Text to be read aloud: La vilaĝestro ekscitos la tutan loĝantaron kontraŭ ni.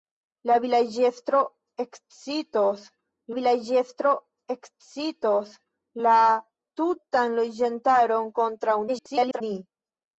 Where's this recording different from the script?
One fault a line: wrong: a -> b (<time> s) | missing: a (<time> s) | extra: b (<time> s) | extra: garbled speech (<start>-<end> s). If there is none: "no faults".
extra: vilaĝestro ekscitos (3.3 s)
extra: garbled speech (8.9-9.4 s)